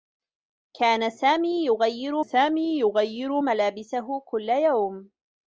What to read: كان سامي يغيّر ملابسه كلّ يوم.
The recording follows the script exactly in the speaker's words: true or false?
false